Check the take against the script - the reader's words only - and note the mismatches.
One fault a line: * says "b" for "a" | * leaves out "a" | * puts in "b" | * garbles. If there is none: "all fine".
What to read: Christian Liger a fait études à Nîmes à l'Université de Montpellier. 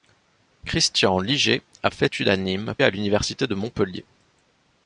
all fine